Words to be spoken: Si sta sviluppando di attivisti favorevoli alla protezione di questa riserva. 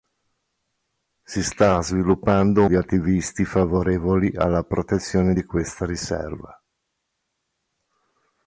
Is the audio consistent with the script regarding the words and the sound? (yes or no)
yes